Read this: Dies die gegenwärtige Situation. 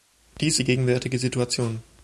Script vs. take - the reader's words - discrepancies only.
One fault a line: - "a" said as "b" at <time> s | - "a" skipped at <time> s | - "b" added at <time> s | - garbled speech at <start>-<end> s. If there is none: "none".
none